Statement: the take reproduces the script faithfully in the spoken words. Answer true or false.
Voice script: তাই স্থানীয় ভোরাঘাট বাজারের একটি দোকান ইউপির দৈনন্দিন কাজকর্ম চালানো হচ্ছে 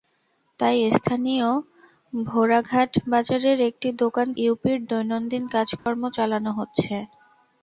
true